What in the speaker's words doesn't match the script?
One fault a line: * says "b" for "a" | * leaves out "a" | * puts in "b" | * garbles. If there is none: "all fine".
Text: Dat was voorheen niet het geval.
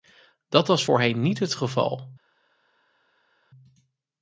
all fine